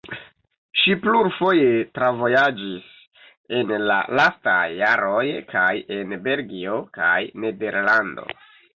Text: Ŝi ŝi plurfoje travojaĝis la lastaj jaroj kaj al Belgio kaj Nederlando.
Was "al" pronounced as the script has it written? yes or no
no